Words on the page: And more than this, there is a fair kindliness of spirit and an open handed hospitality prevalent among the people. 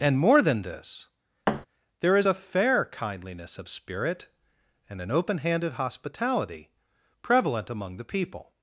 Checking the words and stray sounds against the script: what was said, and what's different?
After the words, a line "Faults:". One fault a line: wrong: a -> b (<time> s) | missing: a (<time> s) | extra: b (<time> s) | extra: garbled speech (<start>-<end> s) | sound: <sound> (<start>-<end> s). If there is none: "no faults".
And more than this, there is a fair kindliness of spirit and an open handed hospitality prevalent among the people.
Faults:
sound: thud (1.5-1.7 s)